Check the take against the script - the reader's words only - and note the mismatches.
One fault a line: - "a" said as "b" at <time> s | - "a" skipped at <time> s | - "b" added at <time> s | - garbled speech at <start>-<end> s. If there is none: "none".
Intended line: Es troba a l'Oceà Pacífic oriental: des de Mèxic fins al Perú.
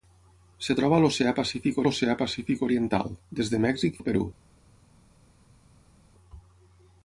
- "l'Oceà Pacífic" added at 1.9 s
- "fins" skipped at 4.0 s